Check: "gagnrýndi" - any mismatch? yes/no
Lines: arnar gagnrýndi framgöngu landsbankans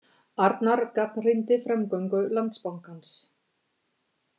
no